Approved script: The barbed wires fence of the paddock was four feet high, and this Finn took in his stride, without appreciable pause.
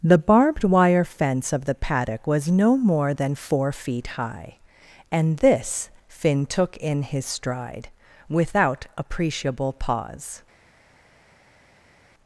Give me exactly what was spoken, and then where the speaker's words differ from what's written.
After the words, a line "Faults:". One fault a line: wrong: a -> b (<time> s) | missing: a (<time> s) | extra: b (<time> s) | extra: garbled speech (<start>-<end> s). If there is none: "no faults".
The barbed wire fence of the paddock was no more than four feet high, and this Finn took in his stride, without appreciable pause.
Faults:
wrong: wires -> wire (0.6 s)
extra: no more than (2.5 s)